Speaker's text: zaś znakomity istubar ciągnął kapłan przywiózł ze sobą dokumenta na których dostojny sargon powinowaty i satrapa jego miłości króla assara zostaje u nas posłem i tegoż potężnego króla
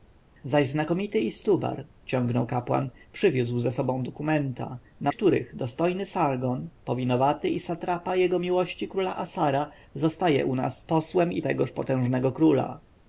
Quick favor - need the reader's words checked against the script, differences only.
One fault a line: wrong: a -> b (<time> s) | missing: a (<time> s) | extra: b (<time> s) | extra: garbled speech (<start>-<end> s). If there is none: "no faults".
no faults